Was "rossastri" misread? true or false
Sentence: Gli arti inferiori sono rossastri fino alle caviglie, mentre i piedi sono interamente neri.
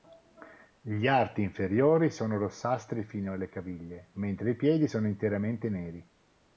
false